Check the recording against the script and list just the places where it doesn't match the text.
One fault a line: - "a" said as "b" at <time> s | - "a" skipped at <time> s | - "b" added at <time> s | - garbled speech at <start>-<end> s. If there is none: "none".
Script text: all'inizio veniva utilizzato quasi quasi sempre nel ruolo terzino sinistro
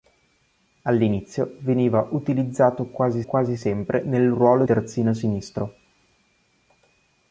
none